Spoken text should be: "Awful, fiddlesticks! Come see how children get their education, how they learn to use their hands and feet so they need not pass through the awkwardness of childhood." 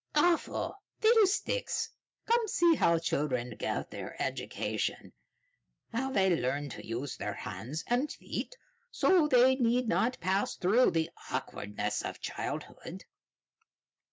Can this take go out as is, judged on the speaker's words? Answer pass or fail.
pass